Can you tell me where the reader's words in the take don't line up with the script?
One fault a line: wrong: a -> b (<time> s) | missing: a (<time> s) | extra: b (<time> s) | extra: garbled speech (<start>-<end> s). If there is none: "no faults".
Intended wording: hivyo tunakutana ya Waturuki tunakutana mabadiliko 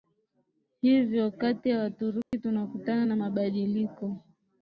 wrong: tunakutana -> kati (1.3 s)
extra: na (3.0 s)